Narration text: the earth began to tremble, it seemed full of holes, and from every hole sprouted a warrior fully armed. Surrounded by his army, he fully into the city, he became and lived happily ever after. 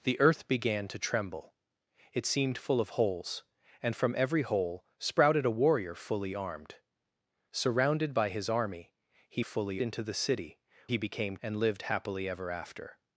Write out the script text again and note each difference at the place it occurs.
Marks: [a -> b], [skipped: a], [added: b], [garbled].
the earth began to tremble, it seemed full of holes, and from every hole sprouted a warrior fully armed. Surrounded by his army, he fully into the city, he became and lived happily ever after.